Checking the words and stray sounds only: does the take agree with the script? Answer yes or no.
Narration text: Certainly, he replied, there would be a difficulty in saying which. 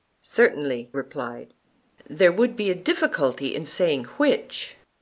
no